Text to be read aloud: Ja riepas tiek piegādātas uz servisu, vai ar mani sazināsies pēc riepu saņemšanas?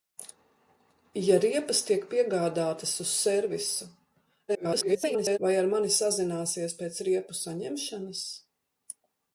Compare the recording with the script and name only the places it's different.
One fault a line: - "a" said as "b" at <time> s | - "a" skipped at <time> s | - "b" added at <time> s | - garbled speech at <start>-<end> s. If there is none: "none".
- garbled speech at 4.5-5.4 s